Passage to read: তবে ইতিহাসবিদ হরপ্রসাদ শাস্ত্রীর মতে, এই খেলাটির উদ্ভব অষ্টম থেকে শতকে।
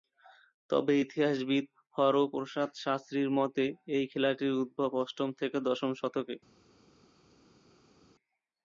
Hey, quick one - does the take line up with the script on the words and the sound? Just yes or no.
no